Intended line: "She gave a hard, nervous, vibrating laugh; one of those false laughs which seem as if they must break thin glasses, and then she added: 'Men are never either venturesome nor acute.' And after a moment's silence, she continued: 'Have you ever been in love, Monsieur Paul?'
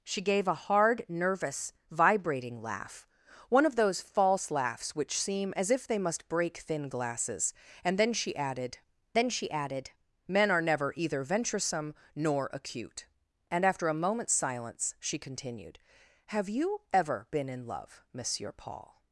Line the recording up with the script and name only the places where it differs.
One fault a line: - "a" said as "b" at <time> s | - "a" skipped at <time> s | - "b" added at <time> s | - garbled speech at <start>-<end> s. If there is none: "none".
- "then she added" added at 9.2 s